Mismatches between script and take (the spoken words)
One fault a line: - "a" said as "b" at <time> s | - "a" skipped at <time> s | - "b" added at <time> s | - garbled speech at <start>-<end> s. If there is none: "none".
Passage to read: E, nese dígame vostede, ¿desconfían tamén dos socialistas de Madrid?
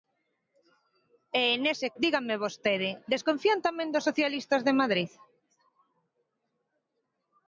none